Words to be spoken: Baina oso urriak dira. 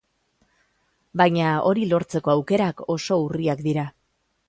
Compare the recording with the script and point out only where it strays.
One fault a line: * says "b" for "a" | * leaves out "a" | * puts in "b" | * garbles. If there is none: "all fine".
* puts in "hori lortzeko aukerak"